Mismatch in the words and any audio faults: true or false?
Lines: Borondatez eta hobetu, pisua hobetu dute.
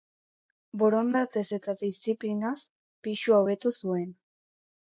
true